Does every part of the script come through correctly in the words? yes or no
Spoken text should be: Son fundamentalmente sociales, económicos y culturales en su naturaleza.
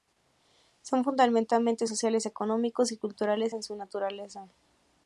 yes